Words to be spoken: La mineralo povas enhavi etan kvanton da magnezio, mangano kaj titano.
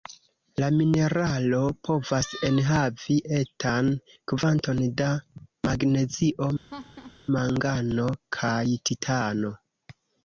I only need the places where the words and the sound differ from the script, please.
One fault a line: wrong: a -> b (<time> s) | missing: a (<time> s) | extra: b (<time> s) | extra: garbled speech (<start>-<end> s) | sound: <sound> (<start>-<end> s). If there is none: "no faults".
sound: laugh (6.7-7.2 s)